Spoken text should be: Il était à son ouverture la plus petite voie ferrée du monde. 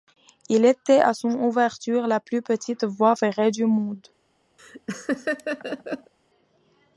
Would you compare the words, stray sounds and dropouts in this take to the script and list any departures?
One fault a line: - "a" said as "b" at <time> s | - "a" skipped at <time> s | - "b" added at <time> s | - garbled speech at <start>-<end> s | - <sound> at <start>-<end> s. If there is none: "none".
- laugh at 4.6-6.1 s